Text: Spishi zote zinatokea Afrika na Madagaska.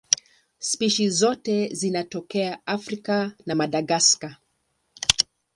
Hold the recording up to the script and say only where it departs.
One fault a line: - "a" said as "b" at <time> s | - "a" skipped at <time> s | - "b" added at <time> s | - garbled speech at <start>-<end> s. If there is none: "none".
none